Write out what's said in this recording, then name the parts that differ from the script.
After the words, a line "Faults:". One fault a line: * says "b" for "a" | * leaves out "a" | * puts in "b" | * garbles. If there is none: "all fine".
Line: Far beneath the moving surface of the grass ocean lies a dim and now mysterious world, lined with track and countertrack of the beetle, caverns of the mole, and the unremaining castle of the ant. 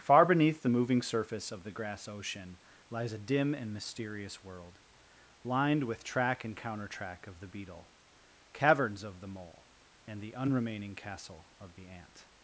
Far beneath the moving surface of the grass ocean lies a dim and mysterious world, lined with track and countertrack of the beetle, caverns of the mole, and the unremaining castle of the ant.
Faults:
* leaves out "now"